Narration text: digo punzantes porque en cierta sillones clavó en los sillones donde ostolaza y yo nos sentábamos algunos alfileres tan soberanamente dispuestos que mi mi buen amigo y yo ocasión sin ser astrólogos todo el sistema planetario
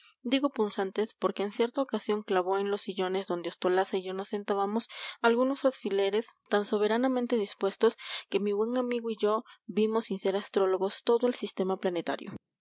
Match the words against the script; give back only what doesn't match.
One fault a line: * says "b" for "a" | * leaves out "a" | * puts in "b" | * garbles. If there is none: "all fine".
* says "ocasión" for "sillones"
* leaves out "mi"
* says "vimos" for "ocasión"